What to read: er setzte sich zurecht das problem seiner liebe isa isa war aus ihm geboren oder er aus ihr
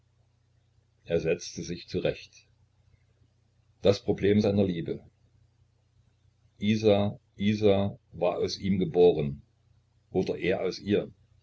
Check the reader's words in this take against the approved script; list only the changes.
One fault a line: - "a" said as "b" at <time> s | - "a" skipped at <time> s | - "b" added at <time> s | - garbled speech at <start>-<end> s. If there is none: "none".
none